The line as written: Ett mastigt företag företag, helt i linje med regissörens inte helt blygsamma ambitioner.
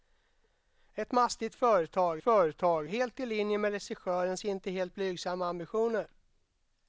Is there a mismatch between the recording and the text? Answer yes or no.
no